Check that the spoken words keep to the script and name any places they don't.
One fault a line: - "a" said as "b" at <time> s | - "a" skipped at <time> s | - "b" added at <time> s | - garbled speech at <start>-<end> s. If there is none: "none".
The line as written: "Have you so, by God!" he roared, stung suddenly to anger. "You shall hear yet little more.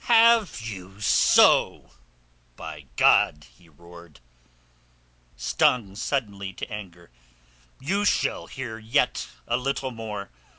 - "a" added at 9.4 s